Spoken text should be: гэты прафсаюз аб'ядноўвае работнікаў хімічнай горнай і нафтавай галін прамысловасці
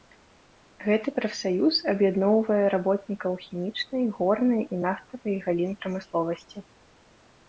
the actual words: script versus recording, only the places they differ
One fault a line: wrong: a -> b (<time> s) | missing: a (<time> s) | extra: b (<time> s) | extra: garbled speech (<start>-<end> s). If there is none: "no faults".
no faults